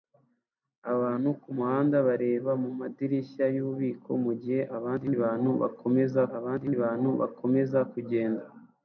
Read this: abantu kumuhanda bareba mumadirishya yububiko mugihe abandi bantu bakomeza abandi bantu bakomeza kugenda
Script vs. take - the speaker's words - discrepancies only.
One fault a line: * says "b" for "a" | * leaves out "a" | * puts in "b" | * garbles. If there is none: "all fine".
all fine